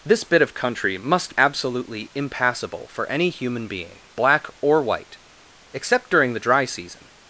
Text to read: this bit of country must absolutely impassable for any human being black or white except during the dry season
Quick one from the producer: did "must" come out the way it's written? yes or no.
yes